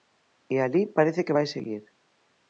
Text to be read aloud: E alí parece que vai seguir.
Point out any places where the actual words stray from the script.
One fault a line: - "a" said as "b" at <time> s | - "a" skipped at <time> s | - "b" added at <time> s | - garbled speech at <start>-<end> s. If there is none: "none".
none